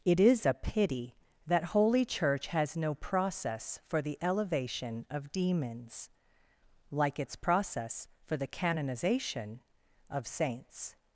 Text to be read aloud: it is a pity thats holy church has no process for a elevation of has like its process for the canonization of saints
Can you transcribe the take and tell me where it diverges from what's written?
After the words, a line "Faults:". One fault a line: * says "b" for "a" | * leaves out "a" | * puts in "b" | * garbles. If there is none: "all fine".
it is a pity that holy church has no process for the elevation of demons like its process for the canonization of saints
Faults:
* says "that" for "thats"
* says "the" for "a"
* says "demons" for "has"